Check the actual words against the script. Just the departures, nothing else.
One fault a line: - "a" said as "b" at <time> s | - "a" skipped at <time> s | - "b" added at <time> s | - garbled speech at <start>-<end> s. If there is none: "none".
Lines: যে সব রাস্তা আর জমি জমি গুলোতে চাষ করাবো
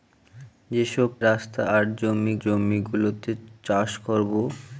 none